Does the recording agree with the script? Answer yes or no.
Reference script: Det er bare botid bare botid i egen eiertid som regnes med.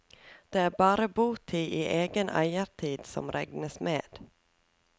no